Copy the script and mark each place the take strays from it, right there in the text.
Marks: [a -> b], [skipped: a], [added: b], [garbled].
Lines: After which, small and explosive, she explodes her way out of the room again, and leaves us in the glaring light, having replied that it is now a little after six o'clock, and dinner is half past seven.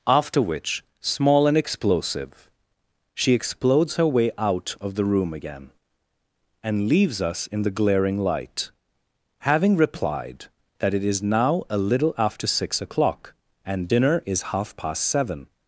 After which, small and explosive, she explodes her way out of the room again, and leaves us in the glaring light, having replied that it is now a little after six o'clock, and dinner is half past seven.